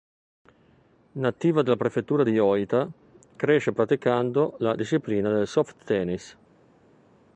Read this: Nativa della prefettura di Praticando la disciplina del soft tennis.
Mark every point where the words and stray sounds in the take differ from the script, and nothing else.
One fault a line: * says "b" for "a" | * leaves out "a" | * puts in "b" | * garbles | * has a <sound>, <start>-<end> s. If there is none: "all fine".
* puts in "Ōita cresce"